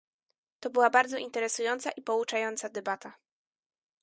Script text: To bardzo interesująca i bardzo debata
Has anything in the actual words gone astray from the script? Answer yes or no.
yes